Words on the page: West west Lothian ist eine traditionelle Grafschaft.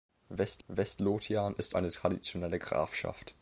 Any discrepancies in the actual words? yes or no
no